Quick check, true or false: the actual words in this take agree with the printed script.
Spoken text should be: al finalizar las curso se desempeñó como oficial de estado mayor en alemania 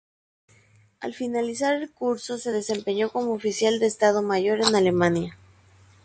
false